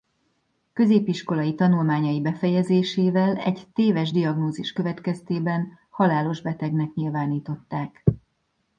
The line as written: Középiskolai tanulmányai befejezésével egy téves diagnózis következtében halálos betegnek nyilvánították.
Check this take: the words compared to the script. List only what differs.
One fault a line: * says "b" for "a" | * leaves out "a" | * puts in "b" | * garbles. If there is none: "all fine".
all fine